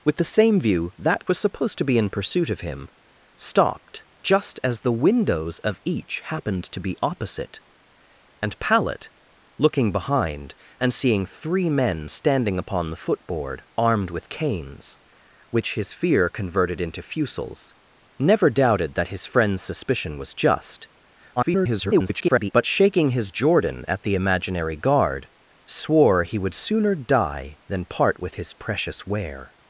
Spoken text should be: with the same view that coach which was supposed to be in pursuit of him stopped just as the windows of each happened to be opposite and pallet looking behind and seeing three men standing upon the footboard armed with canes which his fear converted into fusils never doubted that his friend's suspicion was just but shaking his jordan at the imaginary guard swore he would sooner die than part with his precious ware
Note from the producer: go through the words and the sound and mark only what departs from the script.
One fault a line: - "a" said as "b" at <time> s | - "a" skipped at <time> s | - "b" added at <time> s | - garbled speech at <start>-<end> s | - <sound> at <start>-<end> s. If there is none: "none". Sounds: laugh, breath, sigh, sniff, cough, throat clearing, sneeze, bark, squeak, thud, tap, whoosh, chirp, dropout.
- "coach which" skipped at 1.3 s
- garbled speech at 21.4-22.5 s